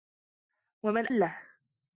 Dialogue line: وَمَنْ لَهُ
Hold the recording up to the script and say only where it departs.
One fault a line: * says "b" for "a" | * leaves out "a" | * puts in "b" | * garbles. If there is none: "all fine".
all fine